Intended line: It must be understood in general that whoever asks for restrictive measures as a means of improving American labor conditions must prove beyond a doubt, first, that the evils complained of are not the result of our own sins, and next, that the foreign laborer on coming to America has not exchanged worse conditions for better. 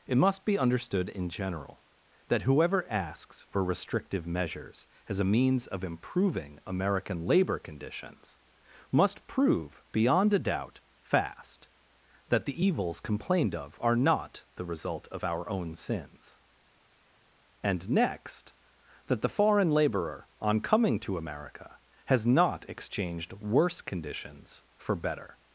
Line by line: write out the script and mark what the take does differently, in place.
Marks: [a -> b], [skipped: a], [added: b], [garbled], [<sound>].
It must be understood in general that whoever asks for restrictive measures as a means of improving American labor conditions must prove beyond a doubt, [first, -> fast] that the evils complained of are not the result of our own sins, and next, that the foreign laborer on coming to America has not exchanged worse conditions for better.